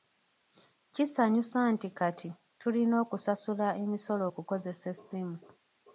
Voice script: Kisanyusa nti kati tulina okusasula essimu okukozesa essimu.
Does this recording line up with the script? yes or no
no